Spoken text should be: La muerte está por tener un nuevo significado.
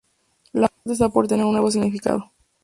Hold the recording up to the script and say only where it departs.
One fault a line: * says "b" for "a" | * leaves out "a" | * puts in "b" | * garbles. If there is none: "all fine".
all fine